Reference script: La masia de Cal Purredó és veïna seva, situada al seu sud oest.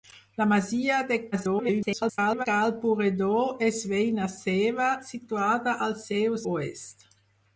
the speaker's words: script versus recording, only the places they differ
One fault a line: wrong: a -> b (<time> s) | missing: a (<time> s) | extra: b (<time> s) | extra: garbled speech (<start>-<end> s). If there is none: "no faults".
extra: garbled speech (1.3-2.5 s)
missing: sud (6.4 s)